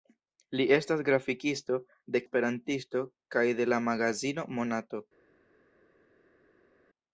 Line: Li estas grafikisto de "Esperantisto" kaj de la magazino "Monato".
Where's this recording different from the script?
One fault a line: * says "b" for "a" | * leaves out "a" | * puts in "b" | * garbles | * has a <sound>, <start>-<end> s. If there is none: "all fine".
all fine